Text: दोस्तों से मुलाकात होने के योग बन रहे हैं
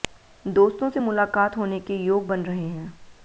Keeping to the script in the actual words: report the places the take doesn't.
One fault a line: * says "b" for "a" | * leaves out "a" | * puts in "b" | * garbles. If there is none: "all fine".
all fine